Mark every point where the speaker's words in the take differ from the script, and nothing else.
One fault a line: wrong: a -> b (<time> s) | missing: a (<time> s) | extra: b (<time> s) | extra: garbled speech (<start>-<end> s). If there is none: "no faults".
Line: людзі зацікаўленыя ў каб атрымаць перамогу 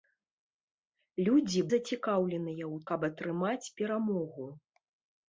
no faults